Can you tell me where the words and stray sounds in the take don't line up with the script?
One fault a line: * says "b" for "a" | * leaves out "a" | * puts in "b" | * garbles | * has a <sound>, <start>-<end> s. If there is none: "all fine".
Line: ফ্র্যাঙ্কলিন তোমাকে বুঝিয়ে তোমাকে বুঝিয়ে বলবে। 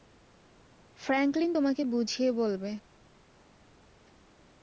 * leaves out "তোমাকে বুঝিয়ে"